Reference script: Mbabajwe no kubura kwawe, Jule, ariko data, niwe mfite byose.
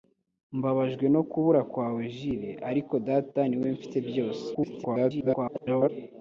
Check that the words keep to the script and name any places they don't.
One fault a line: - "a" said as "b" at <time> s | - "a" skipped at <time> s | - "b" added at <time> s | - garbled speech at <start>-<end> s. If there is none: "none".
- garbled speech at 4.5-5.9 s